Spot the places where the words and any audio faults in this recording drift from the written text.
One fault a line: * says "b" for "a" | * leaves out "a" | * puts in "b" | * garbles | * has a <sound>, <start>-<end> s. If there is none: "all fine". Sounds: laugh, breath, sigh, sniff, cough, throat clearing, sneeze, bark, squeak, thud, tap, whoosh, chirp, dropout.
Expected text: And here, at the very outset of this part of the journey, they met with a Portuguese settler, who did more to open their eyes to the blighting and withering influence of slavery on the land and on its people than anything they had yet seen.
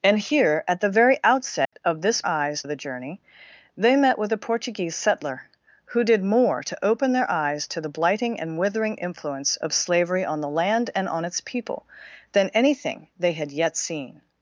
* has a dropout, 1.7-1.7 s
* says "eyes" for "part"